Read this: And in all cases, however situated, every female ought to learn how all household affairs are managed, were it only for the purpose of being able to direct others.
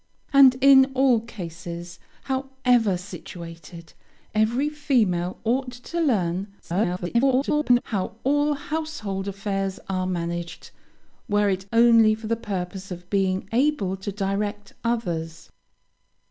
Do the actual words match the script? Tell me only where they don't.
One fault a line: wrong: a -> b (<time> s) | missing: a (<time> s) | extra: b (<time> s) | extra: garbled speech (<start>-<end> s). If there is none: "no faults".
extra: garbled speech (6.6-7.8 s)